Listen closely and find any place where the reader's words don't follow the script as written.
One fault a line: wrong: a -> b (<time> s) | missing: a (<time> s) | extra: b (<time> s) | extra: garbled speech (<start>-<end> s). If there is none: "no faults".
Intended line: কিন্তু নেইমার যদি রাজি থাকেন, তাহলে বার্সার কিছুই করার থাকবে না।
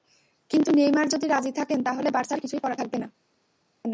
no faults